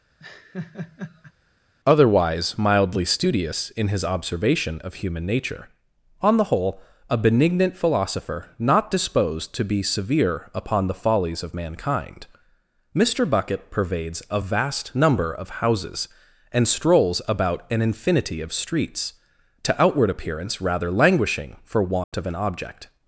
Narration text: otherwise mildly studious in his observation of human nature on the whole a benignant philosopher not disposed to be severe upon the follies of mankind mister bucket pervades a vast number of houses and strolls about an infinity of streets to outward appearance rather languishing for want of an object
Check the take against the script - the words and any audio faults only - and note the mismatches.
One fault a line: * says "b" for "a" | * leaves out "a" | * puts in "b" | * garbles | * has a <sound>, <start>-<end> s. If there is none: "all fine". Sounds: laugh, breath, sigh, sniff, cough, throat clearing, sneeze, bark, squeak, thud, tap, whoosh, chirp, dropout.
* has a laugh, 0.2-1.3 s
* has a dropout, 22.0-22.1 s